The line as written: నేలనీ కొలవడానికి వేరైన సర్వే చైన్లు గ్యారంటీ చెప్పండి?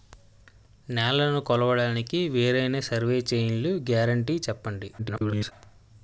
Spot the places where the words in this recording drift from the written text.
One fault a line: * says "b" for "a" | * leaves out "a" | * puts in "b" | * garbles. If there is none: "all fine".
* garbles